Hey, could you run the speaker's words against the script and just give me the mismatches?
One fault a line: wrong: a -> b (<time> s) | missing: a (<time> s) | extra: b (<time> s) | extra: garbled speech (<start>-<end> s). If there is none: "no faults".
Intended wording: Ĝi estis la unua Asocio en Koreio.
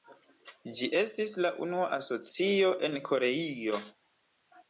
no faults